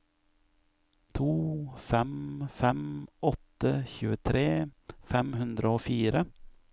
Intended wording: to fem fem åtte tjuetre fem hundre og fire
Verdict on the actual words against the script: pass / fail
pass